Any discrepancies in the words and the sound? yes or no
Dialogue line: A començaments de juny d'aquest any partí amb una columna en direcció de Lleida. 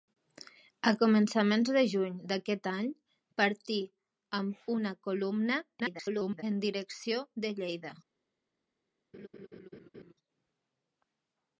yes